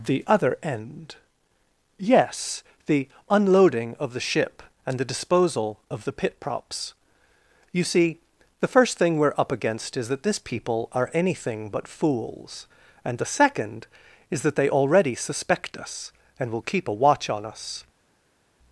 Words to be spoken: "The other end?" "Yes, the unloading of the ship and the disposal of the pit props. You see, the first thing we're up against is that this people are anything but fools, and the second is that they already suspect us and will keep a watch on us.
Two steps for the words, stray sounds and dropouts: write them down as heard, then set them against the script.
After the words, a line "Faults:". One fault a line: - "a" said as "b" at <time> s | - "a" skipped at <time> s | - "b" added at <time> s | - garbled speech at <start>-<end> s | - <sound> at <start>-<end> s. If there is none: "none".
"The other end?" "Yes, the unloading of the ship and the disposal of the pit props. You see, the first thing we're up against is that this people are anything but fools, and the second is that they already suspect us and will keep a watch on us.
Faults:
none